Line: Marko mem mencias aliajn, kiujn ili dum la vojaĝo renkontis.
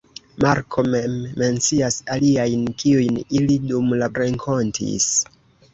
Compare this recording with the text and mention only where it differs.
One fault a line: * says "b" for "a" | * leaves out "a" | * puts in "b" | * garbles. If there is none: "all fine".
* leaves out "vojaĝo"